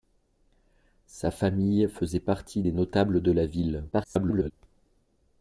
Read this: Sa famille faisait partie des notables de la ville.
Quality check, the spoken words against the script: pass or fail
fail